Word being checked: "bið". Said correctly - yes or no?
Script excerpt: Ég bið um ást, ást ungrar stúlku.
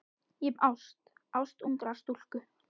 no